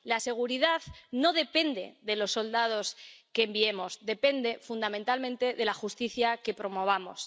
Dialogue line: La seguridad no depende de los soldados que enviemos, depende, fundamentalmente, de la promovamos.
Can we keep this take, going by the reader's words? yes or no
no